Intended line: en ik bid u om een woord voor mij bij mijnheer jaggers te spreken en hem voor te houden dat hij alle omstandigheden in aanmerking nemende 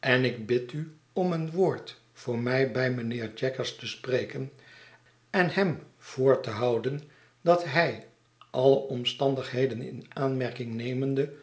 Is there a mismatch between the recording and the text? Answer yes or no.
no